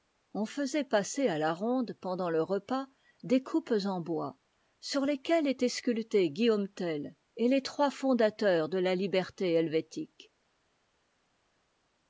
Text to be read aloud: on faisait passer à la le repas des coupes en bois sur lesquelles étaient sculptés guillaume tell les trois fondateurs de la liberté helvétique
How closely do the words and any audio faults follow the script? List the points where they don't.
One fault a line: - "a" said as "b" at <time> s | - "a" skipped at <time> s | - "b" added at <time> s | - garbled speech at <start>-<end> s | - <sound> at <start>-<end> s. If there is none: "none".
- "ronde pendant" added at 1.5 s
- "et" added at 7.4 s